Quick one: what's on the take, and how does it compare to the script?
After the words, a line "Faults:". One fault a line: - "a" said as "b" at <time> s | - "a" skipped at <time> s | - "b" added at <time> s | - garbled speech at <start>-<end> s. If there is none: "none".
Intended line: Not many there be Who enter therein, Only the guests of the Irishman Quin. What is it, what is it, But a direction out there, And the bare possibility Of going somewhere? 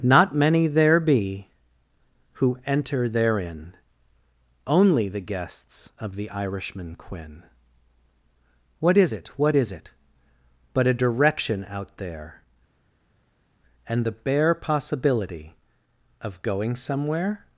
Not many there be Who enter therein, Only the guests of the Irishman Quin. What is it, what is it, But a direction out there, And the bare possibility Of going somewhere?
Faults:
none